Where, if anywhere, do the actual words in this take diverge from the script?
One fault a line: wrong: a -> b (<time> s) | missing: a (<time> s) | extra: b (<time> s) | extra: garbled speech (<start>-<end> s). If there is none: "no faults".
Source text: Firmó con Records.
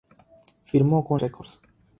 no faults